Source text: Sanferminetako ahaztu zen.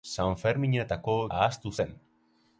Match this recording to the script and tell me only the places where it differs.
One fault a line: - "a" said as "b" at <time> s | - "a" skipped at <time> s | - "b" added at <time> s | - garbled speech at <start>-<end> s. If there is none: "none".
none